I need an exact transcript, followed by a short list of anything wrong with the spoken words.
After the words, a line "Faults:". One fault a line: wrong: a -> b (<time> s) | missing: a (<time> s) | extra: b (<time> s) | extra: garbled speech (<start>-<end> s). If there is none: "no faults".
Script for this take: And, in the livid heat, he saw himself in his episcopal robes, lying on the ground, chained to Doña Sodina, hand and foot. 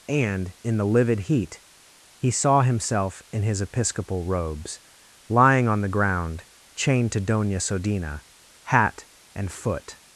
And, in the livid heat, he saw himself in his episcopal robes, lying on the ground, chained to Doña Sodina, hat and foot.
Faults:
wrong: hand -> hat (8.6 s)